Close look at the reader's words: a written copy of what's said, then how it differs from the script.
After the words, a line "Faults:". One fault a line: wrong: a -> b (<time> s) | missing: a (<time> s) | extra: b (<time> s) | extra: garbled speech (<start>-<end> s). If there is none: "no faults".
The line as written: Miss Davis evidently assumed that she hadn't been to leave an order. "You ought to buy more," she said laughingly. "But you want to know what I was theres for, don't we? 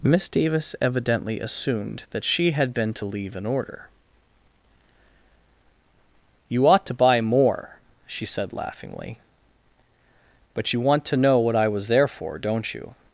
Miss Davis evidently assumed that she had been to leave an order. "You ought to buy more," she said laughingly. "But you want to know what I was there for, don't you?
Faults:
wrong: hadn't -> had (2.5 s)
wrong: theres -> there (11.9 s)
wrong: we -> you (12.7 s)